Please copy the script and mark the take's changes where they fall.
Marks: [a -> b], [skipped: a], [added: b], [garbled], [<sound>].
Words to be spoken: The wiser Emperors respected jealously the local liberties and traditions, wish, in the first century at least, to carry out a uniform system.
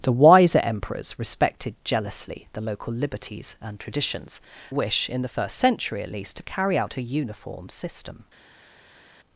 The wiser Emperors respected jealously the local liberties and traditions, wish, in the first century at least, to carry out a uniform system.